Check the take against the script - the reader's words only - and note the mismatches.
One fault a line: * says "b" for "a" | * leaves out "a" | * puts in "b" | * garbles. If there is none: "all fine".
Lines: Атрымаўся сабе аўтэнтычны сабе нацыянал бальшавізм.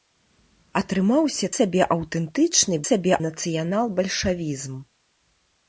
all fine